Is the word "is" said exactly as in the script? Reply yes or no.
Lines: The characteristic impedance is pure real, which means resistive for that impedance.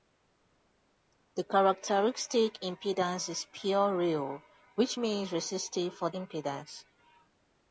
yes